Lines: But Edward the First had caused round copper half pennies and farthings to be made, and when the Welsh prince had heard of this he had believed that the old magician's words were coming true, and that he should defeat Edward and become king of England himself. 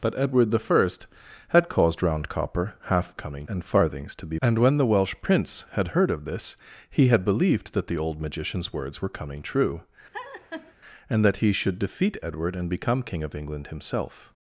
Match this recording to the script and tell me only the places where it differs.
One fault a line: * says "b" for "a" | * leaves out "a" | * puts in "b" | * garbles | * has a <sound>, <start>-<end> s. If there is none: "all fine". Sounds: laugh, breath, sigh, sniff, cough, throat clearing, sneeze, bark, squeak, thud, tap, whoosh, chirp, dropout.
* says "coming" for "pennies"
* leaves out "made"
* has a laugh, 10.1-10.7 s